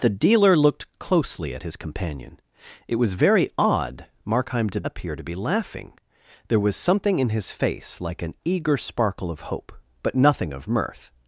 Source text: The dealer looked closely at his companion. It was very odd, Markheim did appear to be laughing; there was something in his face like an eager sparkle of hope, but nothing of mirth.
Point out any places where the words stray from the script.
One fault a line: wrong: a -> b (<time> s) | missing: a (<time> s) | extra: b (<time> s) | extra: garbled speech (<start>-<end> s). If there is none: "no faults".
no faults